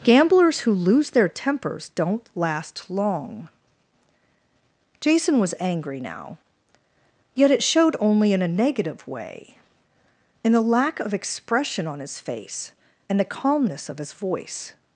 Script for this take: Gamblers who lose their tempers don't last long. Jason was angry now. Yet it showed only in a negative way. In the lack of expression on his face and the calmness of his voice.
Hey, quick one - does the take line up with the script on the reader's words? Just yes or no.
yes